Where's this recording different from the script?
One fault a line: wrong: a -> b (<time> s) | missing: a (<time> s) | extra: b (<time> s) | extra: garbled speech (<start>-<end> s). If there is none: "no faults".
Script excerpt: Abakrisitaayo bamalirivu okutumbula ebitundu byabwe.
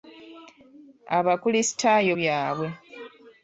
missing: bamalirivu okutumbula ebitundu (2.1 s)